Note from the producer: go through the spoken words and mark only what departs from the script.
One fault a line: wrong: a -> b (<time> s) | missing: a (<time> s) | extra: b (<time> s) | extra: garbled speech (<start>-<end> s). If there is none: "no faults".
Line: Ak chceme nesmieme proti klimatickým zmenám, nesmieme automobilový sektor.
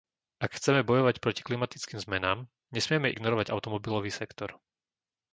wrong: nesmieme -> bojovať (0.8 s)
extra: ignorovať (3.1 s)